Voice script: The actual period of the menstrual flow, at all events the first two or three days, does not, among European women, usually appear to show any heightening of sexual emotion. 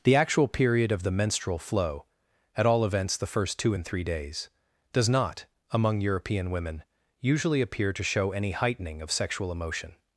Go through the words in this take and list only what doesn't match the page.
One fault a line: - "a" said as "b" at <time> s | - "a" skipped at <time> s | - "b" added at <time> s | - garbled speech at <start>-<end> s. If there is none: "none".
- "or" said as "and" at 3.7 s